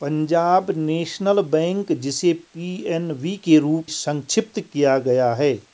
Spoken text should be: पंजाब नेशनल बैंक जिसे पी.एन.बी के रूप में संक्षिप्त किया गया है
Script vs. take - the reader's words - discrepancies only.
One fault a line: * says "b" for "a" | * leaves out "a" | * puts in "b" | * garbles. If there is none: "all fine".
* leaves out "में"